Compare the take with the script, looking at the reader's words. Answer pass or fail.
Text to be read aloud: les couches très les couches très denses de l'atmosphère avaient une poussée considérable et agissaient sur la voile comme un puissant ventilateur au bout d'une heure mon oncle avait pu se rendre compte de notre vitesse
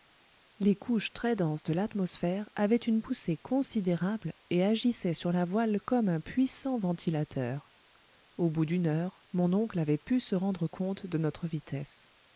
fail